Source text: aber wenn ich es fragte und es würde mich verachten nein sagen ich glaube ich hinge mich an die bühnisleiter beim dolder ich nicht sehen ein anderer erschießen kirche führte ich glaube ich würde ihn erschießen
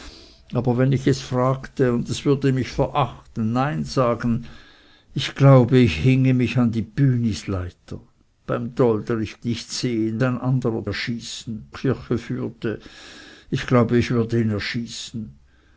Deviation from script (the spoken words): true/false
false